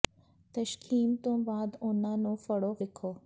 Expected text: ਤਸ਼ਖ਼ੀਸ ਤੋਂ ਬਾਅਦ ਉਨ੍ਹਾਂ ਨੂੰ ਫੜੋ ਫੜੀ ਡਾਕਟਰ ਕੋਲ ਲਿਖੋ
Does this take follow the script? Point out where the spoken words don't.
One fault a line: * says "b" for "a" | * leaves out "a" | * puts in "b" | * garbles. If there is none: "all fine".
* leaves out "ਫੜੀ ਡਾਕਟਰ ਕੋਲ"